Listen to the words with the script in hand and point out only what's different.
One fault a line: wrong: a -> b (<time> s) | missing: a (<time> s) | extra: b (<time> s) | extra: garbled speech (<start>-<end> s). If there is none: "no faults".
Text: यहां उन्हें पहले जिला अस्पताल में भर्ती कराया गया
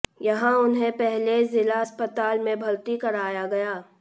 no faults